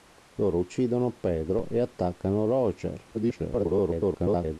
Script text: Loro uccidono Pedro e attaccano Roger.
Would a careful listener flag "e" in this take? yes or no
no